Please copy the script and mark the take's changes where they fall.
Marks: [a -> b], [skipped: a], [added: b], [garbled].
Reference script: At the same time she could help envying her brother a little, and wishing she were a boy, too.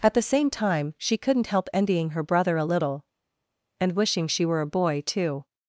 At the same time she [could -> couldn't] help envying her brother a little, and wishing she were a boy, too.